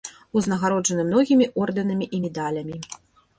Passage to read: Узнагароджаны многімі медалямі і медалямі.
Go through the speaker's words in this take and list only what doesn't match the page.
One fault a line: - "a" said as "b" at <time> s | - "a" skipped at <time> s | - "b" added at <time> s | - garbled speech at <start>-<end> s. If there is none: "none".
- "медалямі" said as "ордэнамі" at 1.6 s